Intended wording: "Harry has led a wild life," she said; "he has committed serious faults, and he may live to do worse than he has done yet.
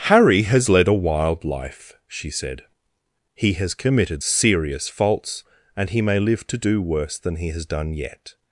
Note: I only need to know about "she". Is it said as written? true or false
true